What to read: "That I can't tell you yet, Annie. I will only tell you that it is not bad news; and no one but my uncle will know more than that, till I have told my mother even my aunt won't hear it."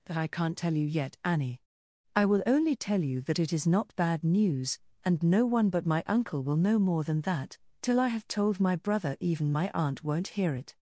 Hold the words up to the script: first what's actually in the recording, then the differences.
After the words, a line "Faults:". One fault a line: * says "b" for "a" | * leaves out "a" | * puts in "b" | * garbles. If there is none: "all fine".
"That I can't tell you yet, Annie. I will only tell you that it is not bad news; and no one but my uncle will know more than that, till I have told my brother even my aunt won't hear it."
Faults:
* says "brother" for "mother"